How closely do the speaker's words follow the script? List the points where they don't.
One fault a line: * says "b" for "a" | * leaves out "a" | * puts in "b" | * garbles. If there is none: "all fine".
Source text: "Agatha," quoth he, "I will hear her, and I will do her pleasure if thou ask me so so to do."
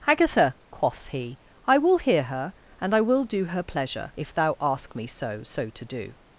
all fine